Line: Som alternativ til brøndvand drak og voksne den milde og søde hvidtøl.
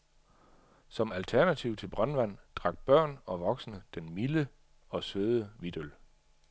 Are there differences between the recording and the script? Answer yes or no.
yes